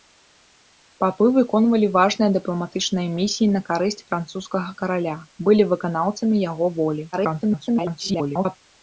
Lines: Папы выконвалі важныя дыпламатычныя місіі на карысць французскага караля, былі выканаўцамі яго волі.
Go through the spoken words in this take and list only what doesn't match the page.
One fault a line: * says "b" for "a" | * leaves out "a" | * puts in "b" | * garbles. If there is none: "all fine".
* garbles